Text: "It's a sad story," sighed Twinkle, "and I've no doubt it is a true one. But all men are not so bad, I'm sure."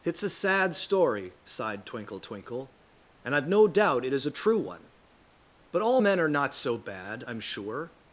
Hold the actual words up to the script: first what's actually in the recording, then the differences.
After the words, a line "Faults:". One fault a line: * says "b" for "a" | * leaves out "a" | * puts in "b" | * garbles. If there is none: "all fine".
"It's a sad story," sighed Twinkle Twinkle, "and I've no doubt it is a true one. But all men are not so bad, I'm sure."
Faults:
* puts in "Twinkle"